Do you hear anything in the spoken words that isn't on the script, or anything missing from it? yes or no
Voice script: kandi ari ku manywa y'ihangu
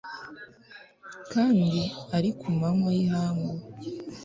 no